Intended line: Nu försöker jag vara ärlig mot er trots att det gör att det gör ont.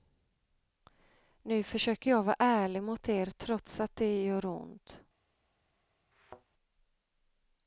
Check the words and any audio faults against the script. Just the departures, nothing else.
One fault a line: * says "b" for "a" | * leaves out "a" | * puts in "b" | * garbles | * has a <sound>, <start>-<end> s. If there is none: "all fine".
* leaves out "att det gör"
* has a thud, 6.1-6.5 s